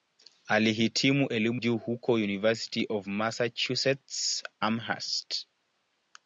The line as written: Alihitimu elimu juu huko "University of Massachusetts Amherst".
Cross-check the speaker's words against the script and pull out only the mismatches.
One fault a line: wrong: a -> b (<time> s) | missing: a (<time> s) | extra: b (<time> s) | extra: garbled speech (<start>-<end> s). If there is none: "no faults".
no faults